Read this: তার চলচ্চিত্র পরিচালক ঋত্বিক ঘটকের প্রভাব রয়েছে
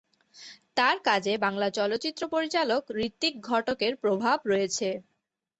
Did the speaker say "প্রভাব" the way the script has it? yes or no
yes